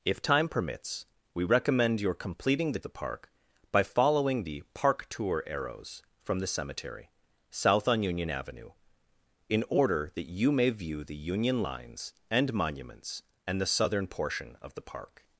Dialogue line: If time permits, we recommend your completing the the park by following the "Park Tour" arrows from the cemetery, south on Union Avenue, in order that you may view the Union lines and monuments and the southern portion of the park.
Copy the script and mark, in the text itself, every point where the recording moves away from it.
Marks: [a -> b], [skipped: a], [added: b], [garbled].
If time permits, we recommend your completing the the park by following the "Park Tour" arrows from the cemetery, south on Union Avenue, in order that you may view the Union lines and monuments and the southern portion of the park.